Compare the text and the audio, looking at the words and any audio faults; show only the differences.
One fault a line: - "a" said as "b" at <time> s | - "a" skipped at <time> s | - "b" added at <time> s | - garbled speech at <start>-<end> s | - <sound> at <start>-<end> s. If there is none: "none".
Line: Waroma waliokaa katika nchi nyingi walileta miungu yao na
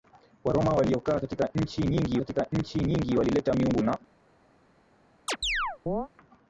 - "katika nchi nyingi" added at 2.2 s
- "yao" skipped at 3.8 s
- chirp at 5.3-6.1 s